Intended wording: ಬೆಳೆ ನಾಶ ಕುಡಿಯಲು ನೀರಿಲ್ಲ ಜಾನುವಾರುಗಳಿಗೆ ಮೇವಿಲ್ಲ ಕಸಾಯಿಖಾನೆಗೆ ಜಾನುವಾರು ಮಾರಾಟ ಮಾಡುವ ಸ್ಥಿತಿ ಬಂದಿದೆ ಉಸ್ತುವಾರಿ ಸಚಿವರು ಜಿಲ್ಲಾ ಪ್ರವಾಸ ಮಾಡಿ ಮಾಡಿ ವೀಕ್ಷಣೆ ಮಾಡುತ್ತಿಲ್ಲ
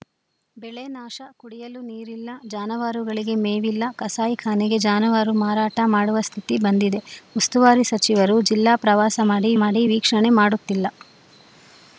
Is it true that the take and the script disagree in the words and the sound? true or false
false